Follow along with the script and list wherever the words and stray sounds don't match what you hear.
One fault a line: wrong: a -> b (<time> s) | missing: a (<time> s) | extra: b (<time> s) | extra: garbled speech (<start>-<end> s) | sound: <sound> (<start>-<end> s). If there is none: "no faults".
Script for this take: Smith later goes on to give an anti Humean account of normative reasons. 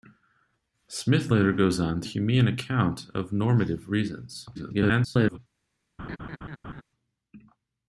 missing: give an anti (2.1 s)
extra: garbled speech (4.5-5.4 s)
sound: laugh (6.0-6.8 s)